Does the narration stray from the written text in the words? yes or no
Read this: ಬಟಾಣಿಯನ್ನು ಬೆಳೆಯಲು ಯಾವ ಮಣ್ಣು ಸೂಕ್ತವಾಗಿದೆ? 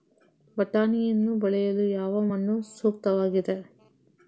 no